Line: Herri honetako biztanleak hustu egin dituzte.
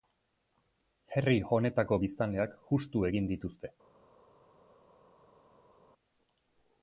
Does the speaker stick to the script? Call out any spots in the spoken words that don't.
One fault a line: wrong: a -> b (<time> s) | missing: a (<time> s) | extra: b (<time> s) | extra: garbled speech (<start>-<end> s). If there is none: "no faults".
no faults